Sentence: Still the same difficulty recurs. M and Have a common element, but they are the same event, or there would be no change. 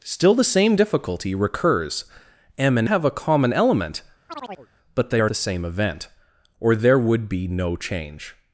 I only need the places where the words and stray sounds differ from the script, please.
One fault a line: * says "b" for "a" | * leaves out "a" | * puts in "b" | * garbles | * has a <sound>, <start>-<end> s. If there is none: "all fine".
* has a chirp, 4.3-4.7 s